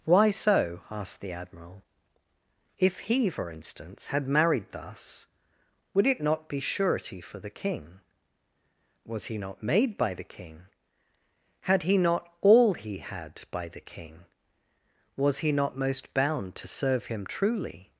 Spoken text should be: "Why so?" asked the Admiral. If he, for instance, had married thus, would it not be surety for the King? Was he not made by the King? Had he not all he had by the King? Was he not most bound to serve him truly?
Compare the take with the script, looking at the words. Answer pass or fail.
pass